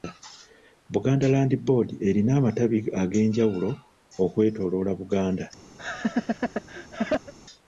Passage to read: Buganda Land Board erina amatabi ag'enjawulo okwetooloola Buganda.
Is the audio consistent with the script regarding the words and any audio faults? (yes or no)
no